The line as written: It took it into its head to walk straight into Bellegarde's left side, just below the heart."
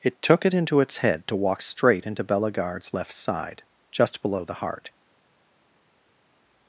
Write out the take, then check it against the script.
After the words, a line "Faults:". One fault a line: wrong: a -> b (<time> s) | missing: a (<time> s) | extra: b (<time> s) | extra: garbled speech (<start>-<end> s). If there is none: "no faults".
It took it into its head to walk straight into Bellegarde's left side, just below the heart."
Faults:
no faults